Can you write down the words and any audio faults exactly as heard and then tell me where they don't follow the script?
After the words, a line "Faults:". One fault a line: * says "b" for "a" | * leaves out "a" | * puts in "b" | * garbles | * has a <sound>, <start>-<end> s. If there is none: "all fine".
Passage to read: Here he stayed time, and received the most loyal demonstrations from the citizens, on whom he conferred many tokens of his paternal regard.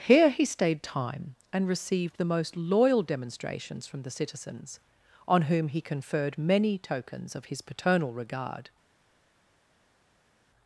Here he stayed time, and received the most loyal demonstrations from the citizens, on whom he conferred many tokens of his paternal regard.
Faults:
all fine